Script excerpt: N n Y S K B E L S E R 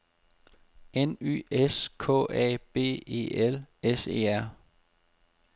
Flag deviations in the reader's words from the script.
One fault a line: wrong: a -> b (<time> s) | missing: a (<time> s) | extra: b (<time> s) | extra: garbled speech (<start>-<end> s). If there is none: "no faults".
missing: n (1.1 s)
extra: A (2.3 s)